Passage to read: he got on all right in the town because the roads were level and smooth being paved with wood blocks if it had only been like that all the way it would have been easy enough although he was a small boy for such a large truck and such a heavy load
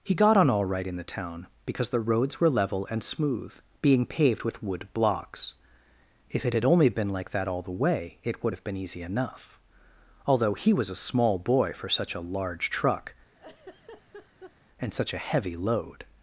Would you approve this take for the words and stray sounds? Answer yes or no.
no